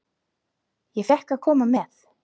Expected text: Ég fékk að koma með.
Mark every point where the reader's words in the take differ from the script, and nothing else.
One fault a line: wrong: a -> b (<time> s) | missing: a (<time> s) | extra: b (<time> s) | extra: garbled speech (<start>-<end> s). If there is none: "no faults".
no faults